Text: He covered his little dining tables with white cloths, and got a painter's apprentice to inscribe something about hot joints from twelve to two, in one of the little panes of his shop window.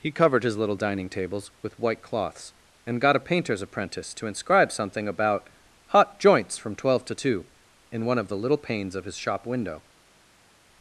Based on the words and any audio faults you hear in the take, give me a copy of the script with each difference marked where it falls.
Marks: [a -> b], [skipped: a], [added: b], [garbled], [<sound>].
He covered his little dining tables with white cloths, and got a painter's apprentice to inscribe something about hot joints from twelve to two, in one of the little panes of his shop window.